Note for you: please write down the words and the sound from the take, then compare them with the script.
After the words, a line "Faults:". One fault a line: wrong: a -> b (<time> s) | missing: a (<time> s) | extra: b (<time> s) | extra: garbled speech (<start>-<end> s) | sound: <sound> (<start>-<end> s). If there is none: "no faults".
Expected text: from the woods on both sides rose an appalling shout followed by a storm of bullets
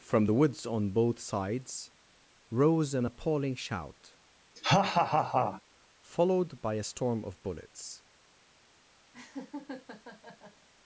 from the woods on both sides rose an appalling shout followed by a storm of bullets
Faults:
sound: laugh (4.6-5.6 s)
sound: laugh (9.1-10.7 s)